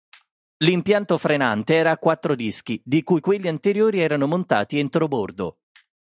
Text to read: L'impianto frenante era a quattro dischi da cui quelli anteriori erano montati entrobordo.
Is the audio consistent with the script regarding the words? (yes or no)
no